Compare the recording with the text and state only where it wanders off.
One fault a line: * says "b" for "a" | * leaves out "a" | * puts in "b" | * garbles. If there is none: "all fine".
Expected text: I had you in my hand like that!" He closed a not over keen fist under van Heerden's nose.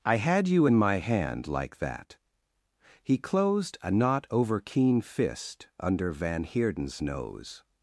all fine